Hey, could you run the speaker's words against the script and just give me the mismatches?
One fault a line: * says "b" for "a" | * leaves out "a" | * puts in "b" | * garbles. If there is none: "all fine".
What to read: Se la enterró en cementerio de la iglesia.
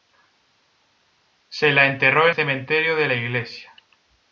all fine